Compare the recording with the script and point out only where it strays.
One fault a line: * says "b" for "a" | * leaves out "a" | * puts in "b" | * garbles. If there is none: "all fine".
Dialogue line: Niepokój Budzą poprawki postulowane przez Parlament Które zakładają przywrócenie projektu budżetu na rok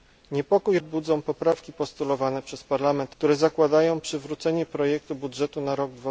all fine